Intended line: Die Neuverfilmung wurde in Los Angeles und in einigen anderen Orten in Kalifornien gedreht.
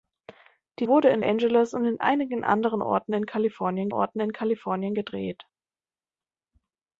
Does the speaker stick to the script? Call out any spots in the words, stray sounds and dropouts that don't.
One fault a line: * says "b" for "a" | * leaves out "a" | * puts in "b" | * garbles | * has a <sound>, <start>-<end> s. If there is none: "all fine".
* leaves out "Neuverfilmung"
* leaves out "Los"
* puts in "Orten in Kalifornien"